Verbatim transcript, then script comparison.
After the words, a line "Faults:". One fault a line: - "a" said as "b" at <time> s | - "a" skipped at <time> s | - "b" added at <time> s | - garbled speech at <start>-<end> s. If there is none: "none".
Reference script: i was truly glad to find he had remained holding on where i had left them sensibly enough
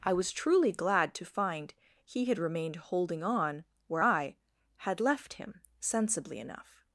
i was truly glad to find he had remained holding on where i had left him sensibly enough
Faults:
- "them" said as "him" at 5.3 s